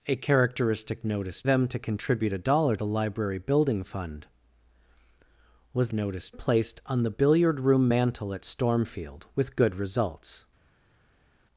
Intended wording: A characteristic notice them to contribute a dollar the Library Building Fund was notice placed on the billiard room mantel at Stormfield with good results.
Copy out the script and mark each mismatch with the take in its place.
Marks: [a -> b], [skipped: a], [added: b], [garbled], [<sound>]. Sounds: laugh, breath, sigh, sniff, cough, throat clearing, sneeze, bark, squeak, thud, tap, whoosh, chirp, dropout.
A characteristic notice them to contribute a dollar the Library Building Fund was notice placed on the billiard room mantel at Stormfield with good results.